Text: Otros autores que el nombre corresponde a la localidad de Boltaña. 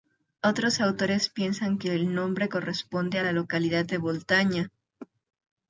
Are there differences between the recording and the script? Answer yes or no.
yes